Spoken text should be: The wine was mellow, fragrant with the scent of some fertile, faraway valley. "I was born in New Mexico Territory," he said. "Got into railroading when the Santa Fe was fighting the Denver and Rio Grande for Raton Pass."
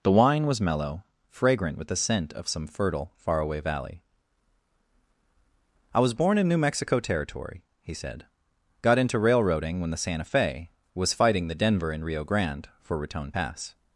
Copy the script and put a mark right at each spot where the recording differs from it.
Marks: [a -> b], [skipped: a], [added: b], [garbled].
The wine was mellow, fragrant with the scent of some fertile, faraway valley. "I was born in New Mexico Territory," he said. "Got into railroading when the Santa Fe was fighting the Denver and Rio Grande for Raton Pass."